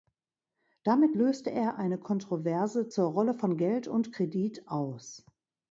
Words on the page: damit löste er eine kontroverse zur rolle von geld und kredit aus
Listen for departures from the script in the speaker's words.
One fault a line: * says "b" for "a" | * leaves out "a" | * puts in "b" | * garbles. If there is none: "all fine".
all fine